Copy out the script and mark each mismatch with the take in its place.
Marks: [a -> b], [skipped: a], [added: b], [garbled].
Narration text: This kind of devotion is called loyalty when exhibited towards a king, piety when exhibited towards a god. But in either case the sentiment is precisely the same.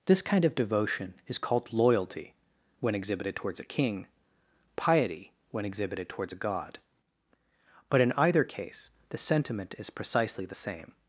This kind of devotion is called loyalty when exhibited towards a king, piety when exhibited towards a god. But in either case the sentiment is precisely the same.